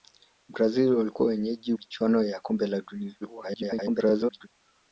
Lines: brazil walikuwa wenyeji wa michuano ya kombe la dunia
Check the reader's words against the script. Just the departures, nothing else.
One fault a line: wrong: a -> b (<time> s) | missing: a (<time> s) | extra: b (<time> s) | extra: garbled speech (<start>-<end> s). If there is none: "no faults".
missing: wa (1.7 s)
extra: garbled speech (3.2-4.5 s)